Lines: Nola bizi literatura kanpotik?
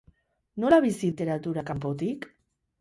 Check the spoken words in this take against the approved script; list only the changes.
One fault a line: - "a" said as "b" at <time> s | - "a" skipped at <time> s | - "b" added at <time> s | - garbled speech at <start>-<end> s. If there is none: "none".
none